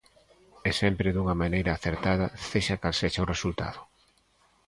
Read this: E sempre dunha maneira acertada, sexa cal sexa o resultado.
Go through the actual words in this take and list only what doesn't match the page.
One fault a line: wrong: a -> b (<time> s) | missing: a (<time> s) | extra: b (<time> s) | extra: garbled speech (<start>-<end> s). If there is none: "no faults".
no faults